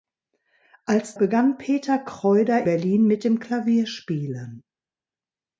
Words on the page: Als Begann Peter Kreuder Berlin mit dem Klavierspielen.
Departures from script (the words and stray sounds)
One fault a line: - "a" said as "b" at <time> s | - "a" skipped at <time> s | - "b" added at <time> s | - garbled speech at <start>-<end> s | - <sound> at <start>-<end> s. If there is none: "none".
none